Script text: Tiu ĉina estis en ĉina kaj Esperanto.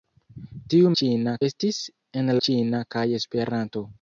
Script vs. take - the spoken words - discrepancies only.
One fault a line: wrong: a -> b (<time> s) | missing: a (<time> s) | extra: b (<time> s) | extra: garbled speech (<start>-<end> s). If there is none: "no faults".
no faults